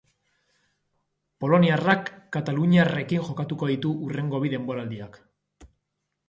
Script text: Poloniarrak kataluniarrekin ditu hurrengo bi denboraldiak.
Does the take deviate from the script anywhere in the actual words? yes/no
yes